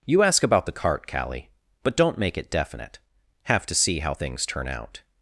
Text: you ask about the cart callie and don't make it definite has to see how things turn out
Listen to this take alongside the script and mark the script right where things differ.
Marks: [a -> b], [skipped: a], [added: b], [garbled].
you ask about the cart callie [and -> but] don't make it definite [has -> have] to see how things turn out